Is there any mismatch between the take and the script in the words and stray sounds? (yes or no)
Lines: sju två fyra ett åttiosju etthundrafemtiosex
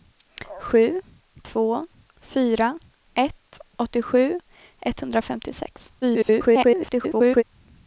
yes